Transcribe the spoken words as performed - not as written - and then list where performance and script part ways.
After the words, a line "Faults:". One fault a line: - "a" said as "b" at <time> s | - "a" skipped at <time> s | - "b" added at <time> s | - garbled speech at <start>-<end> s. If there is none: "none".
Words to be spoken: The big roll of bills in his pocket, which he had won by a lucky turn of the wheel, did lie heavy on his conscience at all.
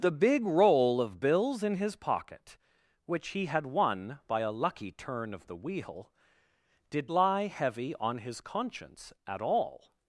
The big roll of bills in his pocket, which he had won by a lucky turn of the wheel, did lie heavy on his conscience at all.
Faults:
none